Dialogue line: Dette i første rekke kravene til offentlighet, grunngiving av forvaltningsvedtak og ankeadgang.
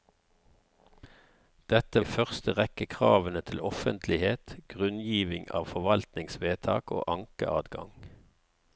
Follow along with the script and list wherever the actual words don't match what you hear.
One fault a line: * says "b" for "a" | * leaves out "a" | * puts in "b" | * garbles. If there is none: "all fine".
all fine